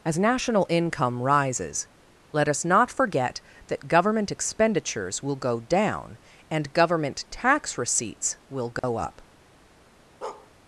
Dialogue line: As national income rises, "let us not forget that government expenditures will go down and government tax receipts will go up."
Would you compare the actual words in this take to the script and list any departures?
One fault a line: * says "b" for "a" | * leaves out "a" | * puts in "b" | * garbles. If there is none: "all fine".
all fine